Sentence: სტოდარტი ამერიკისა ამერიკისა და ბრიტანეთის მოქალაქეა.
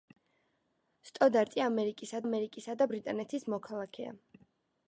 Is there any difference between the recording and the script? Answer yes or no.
no